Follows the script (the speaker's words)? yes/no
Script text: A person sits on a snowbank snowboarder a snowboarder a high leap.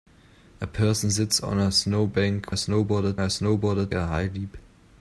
yes